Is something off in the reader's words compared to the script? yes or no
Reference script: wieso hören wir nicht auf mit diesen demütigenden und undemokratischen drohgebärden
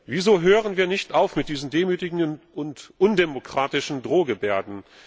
no